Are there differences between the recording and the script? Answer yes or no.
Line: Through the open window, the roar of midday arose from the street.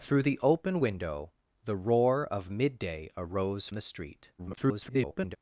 yes